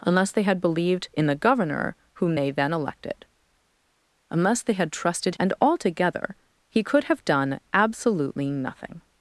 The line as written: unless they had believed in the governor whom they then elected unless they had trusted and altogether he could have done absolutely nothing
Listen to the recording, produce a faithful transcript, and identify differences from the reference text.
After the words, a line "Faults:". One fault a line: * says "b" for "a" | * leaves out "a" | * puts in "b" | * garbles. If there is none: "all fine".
unless they had believed in the governor whom they then elected unless they had trusted and altogether he could have done absolutely nothing
Faults:
all fine